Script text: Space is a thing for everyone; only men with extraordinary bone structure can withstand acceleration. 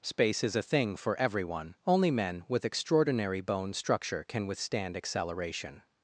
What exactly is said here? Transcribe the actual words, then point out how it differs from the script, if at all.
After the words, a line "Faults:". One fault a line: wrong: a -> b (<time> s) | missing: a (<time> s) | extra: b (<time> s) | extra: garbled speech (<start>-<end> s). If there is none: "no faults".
Space is a thing for everyone; only men with extraordinary bone structure can withstand acceleration.
Faults:
no faults